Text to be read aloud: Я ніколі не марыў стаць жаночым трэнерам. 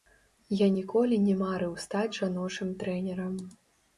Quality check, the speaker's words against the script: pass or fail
pass